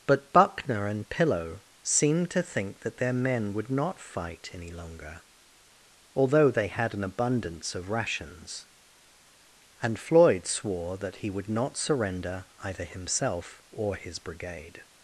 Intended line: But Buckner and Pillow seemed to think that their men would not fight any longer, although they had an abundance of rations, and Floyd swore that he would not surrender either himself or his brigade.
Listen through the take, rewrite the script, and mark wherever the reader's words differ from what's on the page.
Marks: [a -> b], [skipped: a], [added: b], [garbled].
But Buckner and Pillow seemed to think that their men would not fight any longer, although they had an abundance of rations, and Floyd swore that he would not surrender either himself or his brigade.